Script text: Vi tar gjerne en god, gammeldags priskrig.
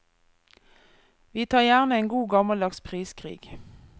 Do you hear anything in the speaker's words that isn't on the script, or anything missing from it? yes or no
no